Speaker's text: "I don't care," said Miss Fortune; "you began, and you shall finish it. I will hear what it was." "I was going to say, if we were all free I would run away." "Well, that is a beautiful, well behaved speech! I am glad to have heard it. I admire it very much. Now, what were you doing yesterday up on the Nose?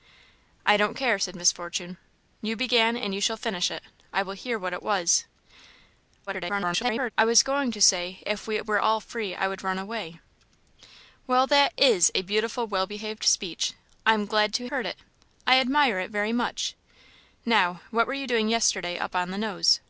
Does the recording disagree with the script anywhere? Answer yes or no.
yes